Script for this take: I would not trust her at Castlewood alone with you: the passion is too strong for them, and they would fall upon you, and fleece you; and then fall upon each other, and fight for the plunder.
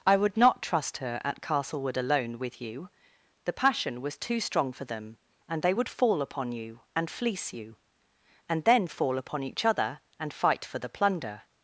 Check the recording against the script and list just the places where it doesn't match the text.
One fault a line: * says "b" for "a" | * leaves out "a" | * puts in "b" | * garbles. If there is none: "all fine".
* says "was" for "is"